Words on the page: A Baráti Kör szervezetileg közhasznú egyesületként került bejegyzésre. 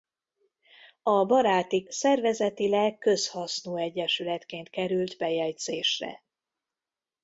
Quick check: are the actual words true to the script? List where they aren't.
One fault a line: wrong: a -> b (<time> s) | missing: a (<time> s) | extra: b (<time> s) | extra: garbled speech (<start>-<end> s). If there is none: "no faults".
missing: Kör (1.9 s)